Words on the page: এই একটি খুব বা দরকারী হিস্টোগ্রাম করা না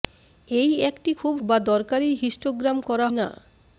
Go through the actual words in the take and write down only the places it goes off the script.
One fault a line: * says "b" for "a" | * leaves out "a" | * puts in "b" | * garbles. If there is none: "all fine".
all fine